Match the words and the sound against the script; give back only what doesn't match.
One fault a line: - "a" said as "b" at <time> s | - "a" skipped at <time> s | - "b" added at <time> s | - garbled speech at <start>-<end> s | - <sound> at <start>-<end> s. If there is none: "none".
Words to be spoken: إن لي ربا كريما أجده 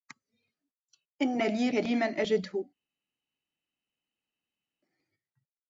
- "ربا" skipped at 1.7 s